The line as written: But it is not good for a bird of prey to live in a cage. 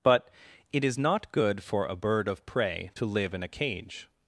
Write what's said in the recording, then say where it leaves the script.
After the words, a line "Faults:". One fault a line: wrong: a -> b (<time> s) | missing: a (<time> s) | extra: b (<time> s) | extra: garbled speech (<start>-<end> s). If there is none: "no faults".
But it is not good for a bird of prey to live in a cage.
Faults:
no faults